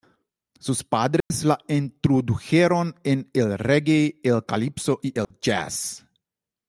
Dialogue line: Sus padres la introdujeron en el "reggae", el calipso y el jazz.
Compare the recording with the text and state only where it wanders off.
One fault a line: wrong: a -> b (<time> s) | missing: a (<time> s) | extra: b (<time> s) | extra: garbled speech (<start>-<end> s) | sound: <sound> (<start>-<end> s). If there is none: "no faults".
sound: dropout (1.2-1.3 s)
sound: dropout (5.2-5.3 s)